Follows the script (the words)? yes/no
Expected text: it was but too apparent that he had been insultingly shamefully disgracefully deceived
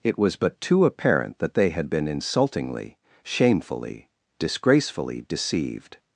no